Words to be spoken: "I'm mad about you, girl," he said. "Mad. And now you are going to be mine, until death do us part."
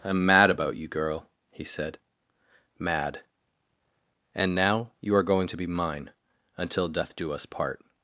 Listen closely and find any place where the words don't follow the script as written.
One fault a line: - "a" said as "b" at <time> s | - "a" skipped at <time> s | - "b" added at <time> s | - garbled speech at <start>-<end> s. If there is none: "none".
none